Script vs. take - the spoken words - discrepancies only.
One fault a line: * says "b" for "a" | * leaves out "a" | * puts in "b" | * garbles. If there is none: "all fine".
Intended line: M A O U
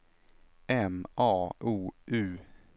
all fine